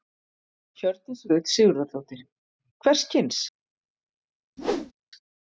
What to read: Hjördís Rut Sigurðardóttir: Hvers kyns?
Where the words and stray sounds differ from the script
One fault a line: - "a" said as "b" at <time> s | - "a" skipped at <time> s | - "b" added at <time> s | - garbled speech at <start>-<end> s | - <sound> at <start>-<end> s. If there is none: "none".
- whoosh at 4.6-4.9 s